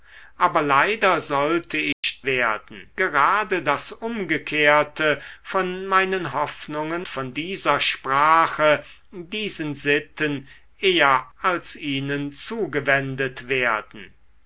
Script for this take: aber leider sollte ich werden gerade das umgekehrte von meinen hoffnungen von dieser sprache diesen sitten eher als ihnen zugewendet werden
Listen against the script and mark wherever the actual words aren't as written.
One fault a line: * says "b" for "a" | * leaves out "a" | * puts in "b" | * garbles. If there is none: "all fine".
all fine